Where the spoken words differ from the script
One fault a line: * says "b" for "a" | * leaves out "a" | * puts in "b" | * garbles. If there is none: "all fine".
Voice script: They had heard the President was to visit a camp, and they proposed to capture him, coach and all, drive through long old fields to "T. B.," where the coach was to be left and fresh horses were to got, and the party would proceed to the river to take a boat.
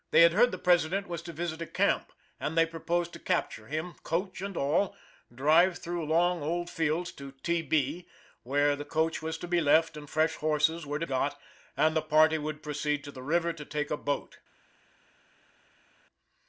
all fine